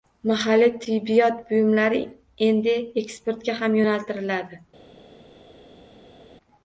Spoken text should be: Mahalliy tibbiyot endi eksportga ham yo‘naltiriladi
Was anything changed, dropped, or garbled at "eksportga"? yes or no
no